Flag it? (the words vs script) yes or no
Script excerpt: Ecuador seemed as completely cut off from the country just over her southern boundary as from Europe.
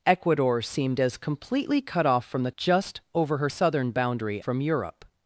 yes